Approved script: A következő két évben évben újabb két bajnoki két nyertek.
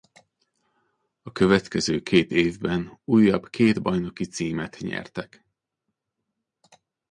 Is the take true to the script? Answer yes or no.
no